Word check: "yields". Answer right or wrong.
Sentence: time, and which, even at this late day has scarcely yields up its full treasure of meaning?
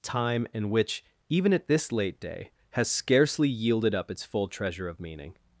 wrong